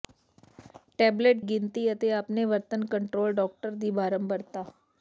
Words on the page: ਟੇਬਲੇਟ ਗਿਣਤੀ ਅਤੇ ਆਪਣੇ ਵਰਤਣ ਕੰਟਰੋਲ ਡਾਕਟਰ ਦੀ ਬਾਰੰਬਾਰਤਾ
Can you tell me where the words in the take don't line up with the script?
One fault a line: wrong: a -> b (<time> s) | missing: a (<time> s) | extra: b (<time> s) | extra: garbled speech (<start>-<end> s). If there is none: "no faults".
no faults